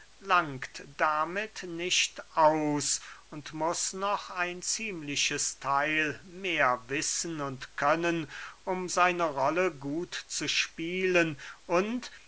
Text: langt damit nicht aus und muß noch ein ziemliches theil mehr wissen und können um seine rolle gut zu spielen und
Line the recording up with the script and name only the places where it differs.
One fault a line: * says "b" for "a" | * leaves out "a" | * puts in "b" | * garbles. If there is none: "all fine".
all fine